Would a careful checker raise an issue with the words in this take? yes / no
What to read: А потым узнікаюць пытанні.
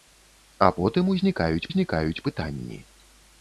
yes